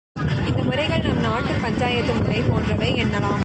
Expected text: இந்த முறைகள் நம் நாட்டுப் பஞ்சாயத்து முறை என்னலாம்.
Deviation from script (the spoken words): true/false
true